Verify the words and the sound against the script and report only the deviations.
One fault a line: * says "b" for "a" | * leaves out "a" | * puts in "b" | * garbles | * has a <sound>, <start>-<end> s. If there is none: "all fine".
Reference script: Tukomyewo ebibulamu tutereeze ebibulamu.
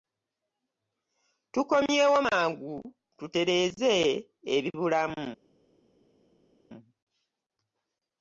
* says "mangu" for "ebibulamu"